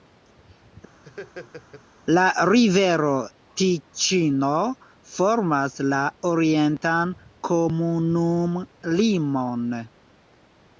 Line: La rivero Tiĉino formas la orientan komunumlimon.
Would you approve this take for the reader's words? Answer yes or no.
yes